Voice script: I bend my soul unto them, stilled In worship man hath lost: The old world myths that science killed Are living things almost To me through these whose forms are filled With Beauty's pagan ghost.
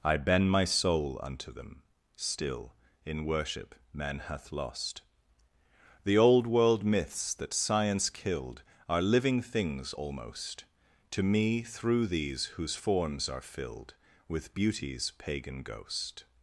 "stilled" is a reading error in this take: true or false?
true